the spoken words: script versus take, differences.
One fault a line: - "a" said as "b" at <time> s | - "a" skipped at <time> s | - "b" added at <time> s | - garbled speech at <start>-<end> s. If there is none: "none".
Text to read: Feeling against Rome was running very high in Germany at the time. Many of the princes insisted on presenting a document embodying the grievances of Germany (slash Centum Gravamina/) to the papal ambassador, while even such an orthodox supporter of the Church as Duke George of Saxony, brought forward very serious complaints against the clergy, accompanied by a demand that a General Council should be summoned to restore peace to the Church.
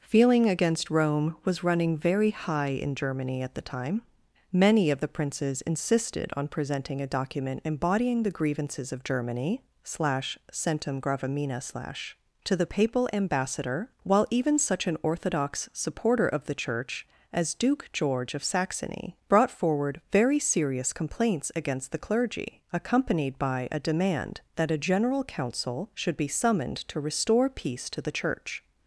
- "slash" added at 11.6 s